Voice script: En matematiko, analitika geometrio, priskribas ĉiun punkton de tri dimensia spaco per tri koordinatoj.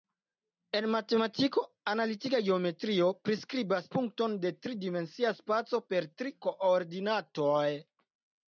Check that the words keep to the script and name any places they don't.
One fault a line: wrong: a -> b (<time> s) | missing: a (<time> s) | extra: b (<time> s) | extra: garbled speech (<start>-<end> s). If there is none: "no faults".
missing: ĉiun (3.9 s)